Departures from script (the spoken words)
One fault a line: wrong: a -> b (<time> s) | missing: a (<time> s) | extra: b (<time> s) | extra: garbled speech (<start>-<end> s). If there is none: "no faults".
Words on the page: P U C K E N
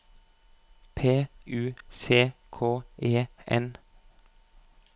no faults